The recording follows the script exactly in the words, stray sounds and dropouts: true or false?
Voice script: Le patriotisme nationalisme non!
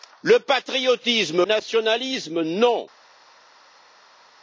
true